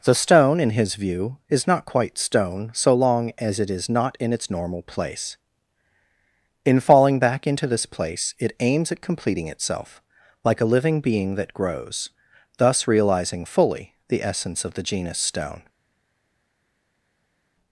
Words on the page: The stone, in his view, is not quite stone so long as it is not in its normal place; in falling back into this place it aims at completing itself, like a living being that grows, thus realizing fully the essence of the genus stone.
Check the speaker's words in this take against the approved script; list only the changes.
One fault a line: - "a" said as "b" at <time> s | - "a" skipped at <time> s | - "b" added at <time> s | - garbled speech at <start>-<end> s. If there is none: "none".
none